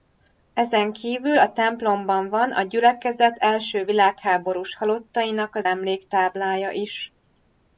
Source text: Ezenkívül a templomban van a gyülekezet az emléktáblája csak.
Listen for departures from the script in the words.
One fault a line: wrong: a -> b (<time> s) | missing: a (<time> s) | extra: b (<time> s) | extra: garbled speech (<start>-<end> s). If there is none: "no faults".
extra: első világháborús halottainak (3.4 s)
wrong: csak -> is (6.7 s)